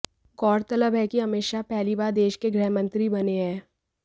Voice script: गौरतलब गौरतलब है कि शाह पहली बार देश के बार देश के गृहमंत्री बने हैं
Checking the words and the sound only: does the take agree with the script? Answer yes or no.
no